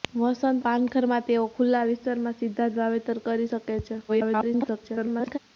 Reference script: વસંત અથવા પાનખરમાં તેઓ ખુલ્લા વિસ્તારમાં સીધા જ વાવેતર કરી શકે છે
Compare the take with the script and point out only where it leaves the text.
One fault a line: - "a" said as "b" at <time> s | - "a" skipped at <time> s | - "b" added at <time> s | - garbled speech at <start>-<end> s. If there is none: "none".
- "અથવા" skipped at 0.6 s
- garbled speech at 4.1-5.4 s